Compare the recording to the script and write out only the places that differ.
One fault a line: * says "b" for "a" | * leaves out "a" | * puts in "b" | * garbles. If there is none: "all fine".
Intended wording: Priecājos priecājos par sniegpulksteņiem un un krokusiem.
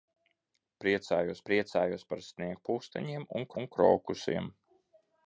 all fine